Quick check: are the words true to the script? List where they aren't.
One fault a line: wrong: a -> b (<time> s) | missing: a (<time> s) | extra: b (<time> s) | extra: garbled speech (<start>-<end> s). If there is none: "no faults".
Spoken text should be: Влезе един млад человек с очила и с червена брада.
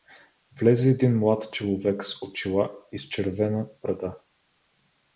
no faults